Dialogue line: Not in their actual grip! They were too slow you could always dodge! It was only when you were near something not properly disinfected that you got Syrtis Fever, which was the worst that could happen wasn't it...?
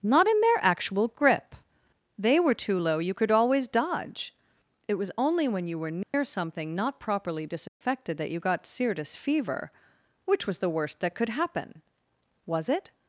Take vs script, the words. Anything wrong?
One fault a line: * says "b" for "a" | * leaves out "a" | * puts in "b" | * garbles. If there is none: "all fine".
* says "low" for "slow"
* says "was" for "wasn't"